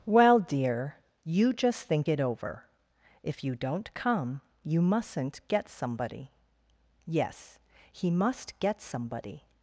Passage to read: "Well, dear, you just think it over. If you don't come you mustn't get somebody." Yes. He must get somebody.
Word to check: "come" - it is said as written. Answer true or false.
true